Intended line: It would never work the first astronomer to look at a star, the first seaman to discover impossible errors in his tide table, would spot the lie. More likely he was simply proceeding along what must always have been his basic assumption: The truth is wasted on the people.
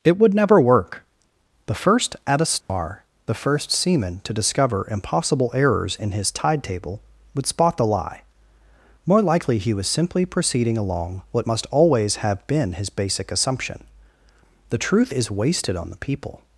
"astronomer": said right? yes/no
no